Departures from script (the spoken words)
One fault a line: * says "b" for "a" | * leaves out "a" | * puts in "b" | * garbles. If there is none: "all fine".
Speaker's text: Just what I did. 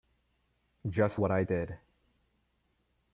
all fine